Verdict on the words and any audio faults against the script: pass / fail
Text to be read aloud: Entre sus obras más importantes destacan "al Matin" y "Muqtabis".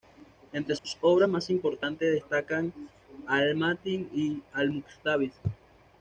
fail